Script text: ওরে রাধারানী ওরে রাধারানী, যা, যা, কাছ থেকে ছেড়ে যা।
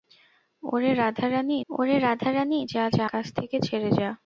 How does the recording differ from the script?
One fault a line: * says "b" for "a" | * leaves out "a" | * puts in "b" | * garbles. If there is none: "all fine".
all fine